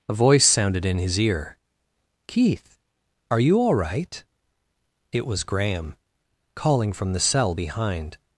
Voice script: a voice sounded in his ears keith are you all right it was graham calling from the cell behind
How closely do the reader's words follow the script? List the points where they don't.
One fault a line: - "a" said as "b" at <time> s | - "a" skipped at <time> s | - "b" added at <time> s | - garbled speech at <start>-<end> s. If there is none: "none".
- "ears" said as "ear" at 1.2 s